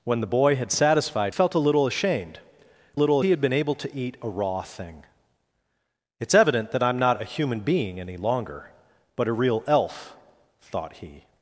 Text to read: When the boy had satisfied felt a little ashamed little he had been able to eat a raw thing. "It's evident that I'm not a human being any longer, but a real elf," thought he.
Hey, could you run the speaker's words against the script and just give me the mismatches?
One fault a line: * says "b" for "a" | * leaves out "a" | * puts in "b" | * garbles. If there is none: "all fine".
all fine